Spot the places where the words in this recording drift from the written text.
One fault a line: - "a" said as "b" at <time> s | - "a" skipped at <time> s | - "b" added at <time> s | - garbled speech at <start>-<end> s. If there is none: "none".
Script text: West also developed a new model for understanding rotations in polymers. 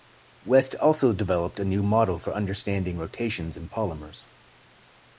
none